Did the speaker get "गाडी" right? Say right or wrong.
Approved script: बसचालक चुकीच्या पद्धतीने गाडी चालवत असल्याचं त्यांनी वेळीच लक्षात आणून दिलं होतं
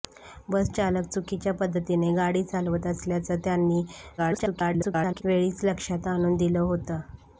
right